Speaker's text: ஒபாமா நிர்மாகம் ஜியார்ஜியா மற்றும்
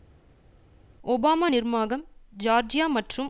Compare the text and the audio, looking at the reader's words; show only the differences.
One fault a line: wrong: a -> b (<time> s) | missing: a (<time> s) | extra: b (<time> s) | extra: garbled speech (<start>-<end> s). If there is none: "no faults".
no faults